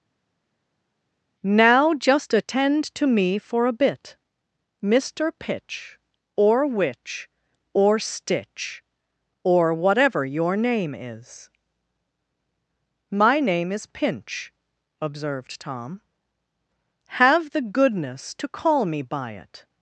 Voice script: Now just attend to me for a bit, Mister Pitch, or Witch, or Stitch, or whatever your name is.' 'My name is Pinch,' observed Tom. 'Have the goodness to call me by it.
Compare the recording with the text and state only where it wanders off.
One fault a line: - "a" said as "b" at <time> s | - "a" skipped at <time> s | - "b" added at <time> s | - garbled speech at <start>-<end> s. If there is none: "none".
none